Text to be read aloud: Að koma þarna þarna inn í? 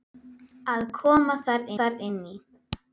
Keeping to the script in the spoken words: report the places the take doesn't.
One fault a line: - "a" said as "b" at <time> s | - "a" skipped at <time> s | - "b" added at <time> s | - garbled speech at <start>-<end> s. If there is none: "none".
none